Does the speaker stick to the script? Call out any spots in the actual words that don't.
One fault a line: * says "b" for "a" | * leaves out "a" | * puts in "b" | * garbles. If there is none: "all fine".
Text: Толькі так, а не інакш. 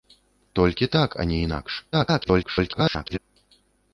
* garbles